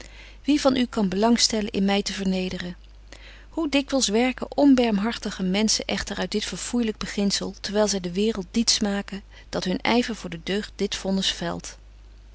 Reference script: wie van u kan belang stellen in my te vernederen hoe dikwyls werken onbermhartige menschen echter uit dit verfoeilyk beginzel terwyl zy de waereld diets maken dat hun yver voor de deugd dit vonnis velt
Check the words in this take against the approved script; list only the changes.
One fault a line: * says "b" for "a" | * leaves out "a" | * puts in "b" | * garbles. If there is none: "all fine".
all fine